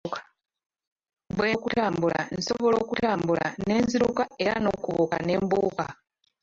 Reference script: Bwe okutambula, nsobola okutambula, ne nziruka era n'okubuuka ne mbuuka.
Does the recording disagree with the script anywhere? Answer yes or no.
no